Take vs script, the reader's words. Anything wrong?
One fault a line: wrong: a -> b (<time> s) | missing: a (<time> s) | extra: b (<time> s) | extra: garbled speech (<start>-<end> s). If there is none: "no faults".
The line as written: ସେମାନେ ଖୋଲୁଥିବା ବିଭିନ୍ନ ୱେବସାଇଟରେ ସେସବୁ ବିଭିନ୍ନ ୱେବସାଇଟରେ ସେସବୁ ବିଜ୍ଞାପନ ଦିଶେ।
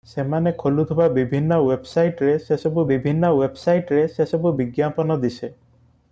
no faults